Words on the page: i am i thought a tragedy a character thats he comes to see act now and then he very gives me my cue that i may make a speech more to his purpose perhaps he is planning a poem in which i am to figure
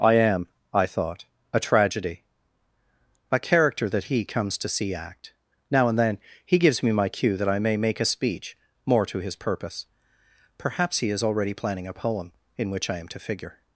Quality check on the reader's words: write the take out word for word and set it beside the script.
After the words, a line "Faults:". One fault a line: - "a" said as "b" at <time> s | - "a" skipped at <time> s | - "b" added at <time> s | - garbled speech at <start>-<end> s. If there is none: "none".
i am i thought a tragedy a character that he comes to see act now and then he gives me my cue that i may make a speech more to his purpose perhaps he is already planning a poem in which i am to figure
Faults:
- "thats" said as "that" at 3.9 s
- "very" skipped at 6.6 s
- "already" added at 11.2 s